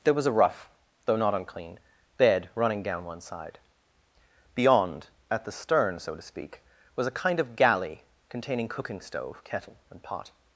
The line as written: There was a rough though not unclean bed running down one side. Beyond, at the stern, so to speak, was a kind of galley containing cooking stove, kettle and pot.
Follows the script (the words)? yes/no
yes